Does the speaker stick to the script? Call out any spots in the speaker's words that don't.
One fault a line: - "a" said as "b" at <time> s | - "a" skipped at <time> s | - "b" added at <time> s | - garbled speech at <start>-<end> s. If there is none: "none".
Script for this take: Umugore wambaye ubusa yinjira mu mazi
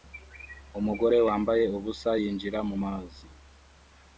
none